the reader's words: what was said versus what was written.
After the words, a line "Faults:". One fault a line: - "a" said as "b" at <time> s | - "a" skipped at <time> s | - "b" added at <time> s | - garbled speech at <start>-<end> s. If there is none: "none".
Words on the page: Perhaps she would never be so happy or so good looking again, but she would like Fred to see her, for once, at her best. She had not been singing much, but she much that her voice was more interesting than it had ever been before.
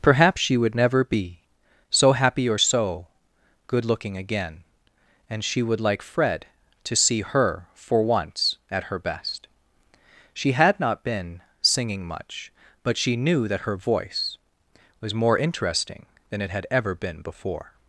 Perhaps she would never be so happy or so good looking again, and she would like Fred to see her, for once, at her best. She had not been singing much, but she knew that her voice was more interesting than it had ever been before.
Faults:
- "but" said as "and" at 5.3 s
- "much" said as "knew" at 13.2 s